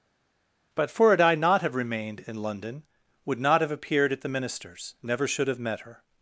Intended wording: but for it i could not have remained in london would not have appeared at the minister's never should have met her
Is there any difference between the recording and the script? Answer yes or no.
yes